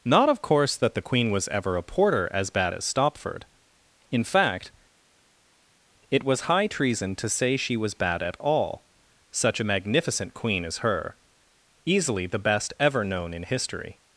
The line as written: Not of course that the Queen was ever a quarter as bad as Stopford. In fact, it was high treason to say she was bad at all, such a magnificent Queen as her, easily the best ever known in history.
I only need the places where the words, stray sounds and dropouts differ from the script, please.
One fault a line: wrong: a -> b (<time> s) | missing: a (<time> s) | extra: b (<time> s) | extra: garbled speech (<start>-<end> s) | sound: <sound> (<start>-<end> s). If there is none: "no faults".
wrong: quarter -> porter (1.8 s)